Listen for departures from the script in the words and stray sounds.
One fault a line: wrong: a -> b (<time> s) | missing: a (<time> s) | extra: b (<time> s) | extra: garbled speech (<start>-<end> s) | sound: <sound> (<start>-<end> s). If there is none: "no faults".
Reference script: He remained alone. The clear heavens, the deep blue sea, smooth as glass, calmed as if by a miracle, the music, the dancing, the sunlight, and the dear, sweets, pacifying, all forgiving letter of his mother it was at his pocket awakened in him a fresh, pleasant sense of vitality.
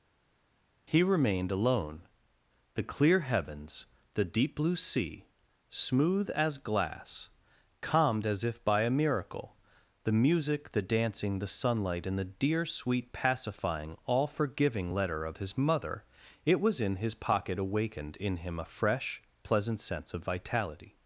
wrong: sweets -> sweet (12.7 s)
wrong: at -> in (16.8 s)